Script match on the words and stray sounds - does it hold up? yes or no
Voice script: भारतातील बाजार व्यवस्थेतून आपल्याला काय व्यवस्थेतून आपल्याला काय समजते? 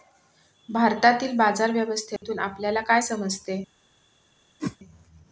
no